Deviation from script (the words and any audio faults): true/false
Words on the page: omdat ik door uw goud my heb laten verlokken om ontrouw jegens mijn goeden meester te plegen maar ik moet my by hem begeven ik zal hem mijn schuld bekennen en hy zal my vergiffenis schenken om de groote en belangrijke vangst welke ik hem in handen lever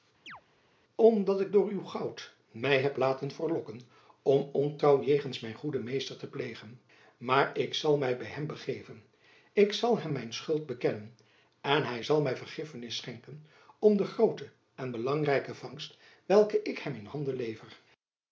true